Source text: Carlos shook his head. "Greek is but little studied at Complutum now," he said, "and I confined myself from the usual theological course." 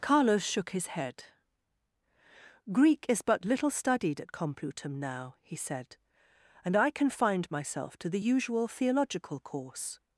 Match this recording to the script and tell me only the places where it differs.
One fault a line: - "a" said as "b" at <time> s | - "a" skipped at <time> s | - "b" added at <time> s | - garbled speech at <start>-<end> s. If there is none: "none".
- "from" said as "to" at 8.0 s